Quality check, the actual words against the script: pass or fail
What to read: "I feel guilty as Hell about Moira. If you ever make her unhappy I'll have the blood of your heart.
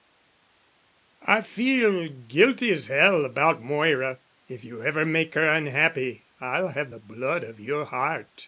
pass